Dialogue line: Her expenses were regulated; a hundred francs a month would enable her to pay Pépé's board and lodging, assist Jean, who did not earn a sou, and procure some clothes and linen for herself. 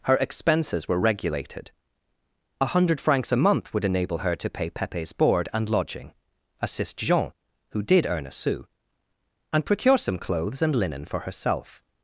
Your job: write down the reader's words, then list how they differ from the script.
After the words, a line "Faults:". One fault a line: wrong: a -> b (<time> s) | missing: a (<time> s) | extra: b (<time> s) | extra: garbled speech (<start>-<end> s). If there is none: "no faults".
Her expenses were regulated; a hundred francs a month would enable her to pay Pépé's board and lodging, assist Jean, who did earn a sou, and procure some clothes and linen for herself.
Faults:
missing: not (8.1 s)